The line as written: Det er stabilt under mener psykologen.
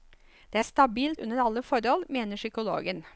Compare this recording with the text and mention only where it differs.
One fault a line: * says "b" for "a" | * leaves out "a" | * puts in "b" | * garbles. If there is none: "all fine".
* puts in "alle forhold"